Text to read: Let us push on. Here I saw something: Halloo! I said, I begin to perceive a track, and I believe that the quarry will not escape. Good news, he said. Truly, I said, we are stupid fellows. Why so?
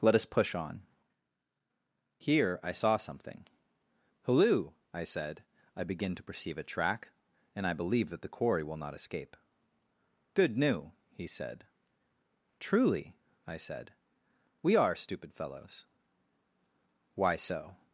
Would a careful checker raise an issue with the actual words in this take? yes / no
yes